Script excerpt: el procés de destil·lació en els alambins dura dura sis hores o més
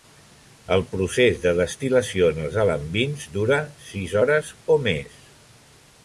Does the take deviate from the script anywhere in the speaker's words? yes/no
yes